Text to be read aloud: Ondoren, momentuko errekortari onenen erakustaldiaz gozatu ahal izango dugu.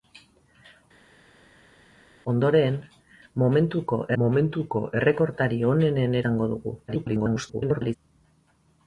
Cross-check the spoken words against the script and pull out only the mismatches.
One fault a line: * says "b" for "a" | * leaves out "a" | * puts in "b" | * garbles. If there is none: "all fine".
* puts in "momentuko"
* leaves out "erakustaldiaz gozatu ahal"
* garbles